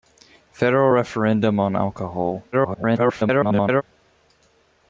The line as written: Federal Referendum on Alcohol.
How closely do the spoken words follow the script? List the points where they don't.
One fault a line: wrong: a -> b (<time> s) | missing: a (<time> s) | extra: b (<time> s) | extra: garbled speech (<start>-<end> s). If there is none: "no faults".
extra: garbled speech (2.5-3.8 s)